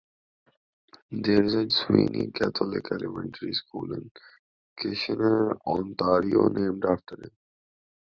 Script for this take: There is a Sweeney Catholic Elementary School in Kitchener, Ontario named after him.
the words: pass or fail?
pass